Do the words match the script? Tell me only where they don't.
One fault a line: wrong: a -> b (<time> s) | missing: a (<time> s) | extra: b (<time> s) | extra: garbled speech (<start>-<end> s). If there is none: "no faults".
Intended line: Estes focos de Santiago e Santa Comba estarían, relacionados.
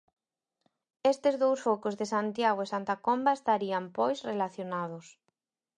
extra: dous (1.4 s)
extra: pois (4.0 s)